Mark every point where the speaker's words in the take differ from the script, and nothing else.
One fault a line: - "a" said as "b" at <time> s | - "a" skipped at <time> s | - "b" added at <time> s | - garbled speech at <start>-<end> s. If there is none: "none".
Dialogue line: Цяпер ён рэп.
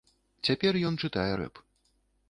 - "чытае" added at 1.0 s